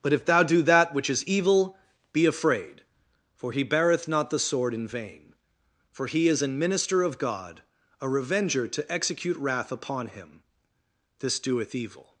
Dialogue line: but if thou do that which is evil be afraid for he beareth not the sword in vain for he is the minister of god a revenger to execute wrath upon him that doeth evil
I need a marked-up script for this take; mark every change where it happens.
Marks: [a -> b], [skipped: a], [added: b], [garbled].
but if thou do that which is evil be afraid for he beareth not the sword in vain for he is [the -> an] minister of god a revenger to execute wrath upon him [that -> this] doeth evil